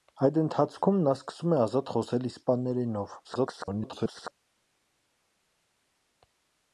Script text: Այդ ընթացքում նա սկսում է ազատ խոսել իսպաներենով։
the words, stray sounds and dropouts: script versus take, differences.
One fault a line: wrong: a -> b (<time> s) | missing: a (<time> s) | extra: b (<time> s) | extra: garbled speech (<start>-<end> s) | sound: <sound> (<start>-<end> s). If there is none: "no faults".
extra: garbled speech (3.2-4.3 s)